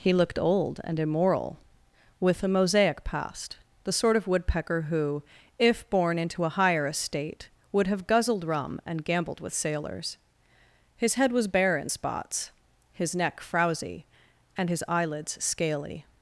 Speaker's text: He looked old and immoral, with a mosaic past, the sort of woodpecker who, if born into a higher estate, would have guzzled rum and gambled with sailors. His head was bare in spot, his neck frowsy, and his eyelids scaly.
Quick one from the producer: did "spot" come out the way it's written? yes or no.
no